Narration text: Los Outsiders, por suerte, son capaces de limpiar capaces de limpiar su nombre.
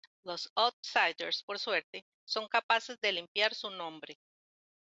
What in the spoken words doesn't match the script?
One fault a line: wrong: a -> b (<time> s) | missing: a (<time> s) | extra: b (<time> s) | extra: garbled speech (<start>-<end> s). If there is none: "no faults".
missing: capaces de limpiar (3.5 s)